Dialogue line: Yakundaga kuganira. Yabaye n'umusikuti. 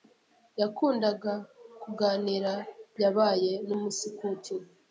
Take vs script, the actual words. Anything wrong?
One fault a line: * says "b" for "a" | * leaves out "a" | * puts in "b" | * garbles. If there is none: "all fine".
all fine